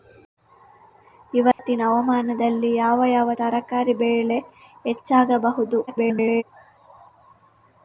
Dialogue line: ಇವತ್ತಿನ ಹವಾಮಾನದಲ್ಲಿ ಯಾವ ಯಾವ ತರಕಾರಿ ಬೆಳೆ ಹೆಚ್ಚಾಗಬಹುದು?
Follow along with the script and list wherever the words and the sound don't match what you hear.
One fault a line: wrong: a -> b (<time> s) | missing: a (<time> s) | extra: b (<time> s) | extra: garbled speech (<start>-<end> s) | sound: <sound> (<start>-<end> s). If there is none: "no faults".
sound: dropout (1.5-1.6 s)
extra: garbled speech (5.9-6.4 s)